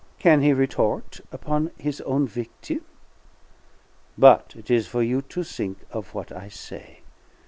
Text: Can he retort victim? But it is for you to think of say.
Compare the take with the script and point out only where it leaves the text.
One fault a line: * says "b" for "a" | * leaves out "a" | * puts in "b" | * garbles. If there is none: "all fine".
* puts in "upon his own"
* puts in "what I"